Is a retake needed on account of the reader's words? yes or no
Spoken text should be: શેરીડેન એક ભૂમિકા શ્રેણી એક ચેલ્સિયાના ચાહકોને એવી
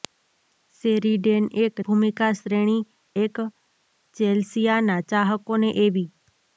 no